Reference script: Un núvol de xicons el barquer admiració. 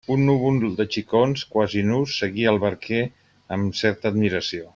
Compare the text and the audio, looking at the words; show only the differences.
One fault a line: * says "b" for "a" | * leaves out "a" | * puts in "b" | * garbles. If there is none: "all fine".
* puts in "quasi nus seguia"
* puts in "amb certa"